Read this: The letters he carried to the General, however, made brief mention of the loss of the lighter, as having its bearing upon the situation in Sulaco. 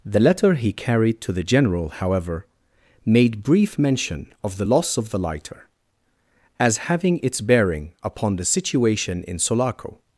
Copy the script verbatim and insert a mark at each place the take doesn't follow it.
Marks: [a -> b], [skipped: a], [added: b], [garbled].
The [letters -> letter] he carried to the General, however, made brief mention of the loss of the lighter, as having its bearing upon the situation in Sulaco.